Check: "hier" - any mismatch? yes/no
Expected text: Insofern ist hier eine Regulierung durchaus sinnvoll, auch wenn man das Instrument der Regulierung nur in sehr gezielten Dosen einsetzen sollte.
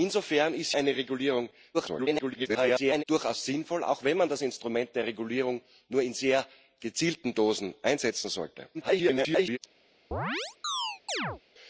yes